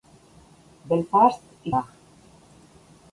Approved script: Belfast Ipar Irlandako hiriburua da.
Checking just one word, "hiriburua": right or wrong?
wrong